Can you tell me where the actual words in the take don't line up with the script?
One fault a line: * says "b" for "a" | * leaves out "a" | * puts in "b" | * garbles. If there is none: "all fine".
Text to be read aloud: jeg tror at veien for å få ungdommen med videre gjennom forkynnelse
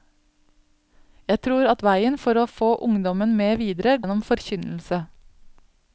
all fine